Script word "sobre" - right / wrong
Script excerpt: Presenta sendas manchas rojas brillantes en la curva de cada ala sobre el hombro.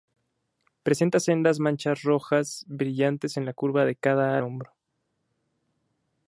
wrong